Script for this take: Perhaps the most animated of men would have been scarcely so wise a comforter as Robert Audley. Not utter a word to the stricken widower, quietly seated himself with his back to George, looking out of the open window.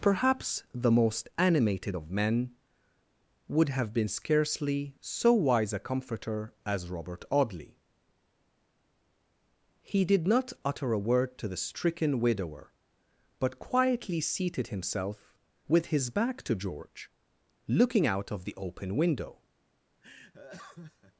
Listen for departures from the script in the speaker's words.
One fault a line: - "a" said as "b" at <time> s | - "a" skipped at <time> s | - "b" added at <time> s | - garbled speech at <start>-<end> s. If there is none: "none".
- "He did" added at 9.8 s
- "but" added at 13.4 s